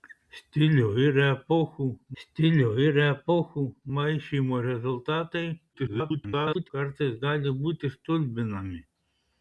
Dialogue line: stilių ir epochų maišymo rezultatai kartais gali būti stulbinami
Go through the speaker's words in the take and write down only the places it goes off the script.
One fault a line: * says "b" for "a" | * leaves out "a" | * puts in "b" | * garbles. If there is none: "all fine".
* puts in "stilių ir epochų"
* garbles